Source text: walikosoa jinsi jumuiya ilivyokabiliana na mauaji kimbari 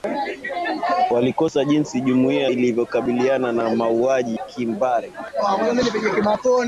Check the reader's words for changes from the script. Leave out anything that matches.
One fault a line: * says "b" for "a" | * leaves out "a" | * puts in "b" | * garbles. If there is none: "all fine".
all fine